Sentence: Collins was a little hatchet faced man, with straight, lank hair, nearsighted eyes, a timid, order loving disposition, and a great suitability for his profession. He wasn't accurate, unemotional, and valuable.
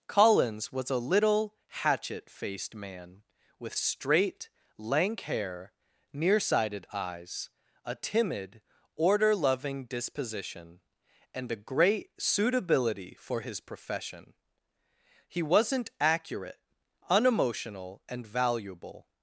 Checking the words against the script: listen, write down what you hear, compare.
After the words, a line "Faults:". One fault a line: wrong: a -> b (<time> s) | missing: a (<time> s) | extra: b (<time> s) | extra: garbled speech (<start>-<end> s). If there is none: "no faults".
Collins was a little hatchet faced man, with straight, lank hair, nearsighted eyes, a timid, order loving disposition, and a great suitability for his profession. He wasn't accurate, unemotional, and valuable.
Faults:
no faults